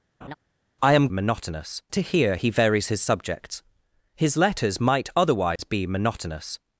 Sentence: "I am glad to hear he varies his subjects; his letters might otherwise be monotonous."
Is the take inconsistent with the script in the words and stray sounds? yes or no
yes